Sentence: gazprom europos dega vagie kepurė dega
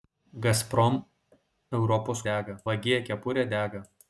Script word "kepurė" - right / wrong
right